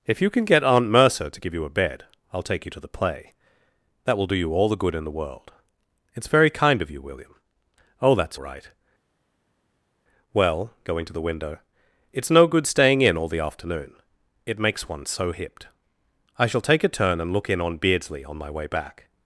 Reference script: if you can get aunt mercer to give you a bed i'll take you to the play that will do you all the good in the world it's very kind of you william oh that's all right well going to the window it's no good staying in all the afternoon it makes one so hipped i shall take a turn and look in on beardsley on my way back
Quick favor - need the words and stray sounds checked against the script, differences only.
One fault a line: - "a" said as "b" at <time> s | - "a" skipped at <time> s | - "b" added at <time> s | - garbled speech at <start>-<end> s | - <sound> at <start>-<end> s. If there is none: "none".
- "all" skipped at 8.4 s